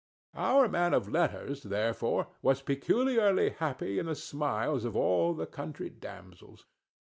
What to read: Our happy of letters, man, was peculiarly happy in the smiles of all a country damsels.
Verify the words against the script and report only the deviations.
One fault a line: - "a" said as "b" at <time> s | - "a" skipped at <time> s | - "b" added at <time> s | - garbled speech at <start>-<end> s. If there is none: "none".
- "happy" said as "man" at 0.7 s
- "man" said as "therefore" at 1.6 s
- "a" said as "the" at 5.3 s